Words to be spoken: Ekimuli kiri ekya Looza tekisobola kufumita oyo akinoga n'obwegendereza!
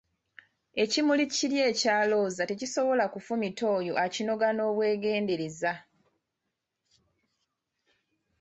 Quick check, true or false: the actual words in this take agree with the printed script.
true